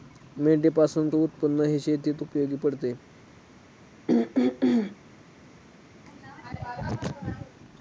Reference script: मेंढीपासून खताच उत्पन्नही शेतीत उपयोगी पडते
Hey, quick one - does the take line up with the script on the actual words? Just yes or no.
no